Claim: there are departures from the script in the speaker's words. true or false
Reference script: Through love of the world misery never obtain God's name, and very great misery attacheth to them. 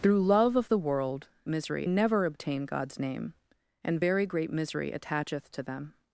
false